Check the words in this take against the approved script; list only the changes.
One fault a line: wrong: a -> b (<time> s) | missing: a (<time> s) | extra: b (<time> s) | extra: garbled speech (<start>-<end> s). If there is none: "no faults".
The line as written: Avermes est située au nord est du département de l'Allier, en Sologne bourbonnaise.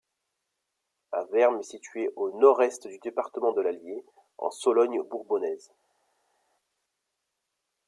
no faults